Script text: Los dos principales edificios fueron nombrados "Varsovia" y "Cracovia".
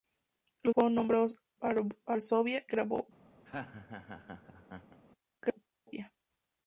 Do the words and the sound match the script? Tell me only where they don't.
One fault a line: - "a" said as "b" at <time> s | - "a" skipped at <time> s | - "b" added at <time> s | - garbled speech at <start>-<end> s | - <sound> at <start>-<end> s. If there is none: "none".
- "dos principales edificios" skipped at 0.7 s
- "y" skipped at 2.7 s
- laugh at 3.4-5.0 s